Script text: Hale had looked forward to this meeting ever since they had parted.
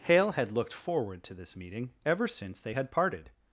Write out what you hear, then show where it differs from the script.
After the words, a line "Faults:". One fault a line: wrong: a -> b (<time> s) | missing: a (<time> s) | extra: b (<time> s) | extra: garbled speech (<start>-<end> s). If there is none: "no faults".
Hale had looked forward to this meeting ever since they had parted.
Faults:
no faults